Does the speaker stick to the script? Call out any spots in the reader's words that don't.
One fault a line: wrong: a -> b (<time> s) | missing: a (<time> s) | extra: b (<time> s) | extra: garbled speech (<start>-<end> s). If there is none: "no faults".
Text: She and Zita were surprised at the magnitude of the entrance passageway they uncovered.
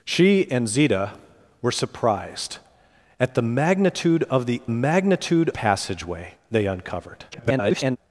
wrong: entrance -> magnitude (4.7 s)
extra: garbled speech (7.3-8.0 s)